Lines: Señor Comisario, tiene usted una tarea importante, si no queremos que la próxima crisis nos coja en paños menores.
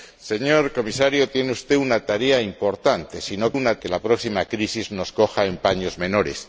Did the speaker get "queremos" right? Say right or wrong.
wrong